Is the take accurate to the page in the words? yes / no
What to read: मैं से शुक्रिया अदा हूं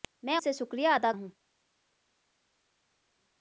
yes